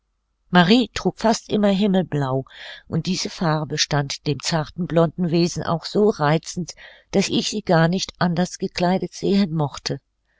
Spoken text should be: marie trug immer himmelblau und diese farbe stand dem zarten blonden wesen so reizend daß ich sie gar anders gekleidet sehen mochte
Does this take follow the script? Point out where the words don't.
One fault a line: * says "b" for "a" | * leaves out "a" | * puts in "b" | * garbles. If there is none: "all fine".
* puts in "fast"
* puts in "auch"
* puts in "nicht"